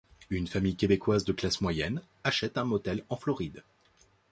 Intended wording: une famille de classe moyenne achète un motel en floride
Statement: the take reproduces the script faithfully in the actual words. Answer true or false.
false